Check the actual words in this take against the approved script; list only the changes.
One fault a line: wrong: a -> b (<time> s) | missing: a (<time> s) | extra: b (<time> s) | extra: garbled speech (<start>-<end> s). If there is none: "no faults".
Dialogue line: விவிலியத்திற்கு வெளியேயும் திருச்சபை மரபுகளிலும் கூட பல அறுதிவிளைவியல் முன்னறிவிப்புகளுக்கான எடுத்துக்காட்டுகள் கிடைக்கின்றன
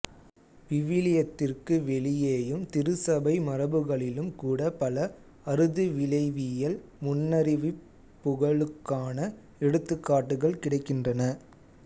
no faults